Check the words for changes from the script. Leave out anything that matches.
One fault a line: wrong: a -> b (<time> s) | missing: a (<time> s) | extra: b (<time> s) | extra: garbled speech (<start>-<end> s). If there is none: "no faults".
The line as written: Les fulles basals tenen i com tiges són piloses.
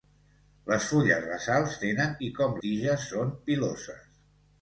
no faults